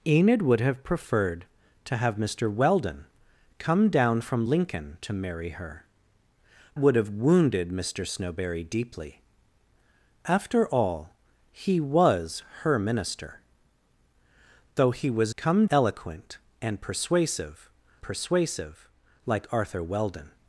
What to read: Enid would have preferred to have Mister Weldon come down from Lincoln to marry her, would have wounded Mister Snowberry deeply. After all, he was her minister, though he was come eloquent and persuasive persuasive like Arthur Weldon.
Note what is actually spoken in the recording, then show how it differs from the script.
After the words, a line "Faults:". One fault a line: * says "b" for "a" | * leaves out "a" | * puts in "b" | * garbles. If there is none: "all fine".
Enid would have preferred to have Mister Weldon come down from Lincoln to marry her, would have wounded Mister Snowberry deeply. After all, he was her minister, though he was come eloquent and persuasive persuasive like Arthur Weldon.
Faults:
all fine